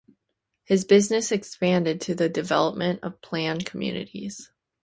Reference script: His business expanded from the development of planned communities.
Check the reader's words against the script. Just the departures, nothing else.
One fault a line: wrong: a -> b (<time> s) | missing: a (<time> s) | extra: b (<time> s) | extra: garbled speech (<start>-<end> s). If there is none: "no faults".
wrong: from -> to (2.0 s)